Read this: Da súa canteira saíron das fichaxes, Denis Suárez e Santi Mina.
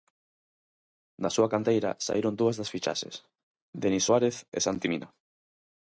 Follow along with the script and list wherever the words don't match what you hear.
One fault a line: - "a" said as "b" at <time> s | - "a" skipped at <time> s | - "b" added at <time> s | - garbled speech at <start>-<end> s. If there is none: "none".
- "dúas" added at 2.4 s